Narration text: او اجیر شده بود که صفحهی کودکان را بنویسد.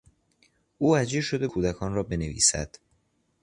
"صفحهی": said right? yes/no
no